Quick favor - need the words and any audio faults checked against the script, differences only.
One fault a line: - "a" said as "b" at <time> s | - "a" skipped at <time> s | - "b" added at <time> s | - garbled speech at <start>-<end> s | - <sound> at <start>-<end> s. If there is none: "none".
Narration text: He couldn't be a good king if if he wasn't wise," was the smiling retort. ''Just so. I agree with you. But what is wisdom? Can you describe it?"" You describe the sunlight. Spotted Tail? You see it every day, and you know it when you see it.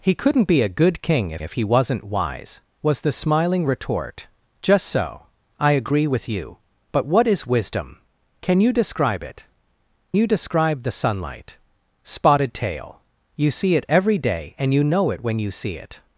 none